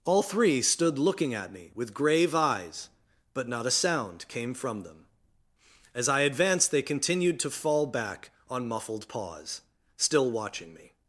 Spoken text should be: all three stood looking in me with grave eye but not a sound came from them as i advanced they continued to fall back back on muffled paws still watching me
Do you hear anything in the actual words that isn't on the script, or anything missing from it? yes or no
yes